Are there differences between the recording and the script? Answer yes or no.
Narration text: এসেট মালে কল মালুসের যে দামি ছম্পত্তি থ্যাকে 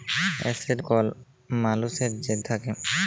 yes